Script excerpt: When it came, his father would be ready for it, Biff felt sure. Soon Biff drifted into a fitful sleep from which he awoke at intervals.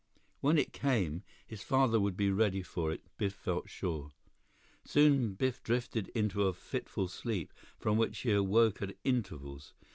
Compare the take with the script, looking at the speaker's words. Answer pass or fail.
pass